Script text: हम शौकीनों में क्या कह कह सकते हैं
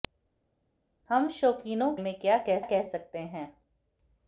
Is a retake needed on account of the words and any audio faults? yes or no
no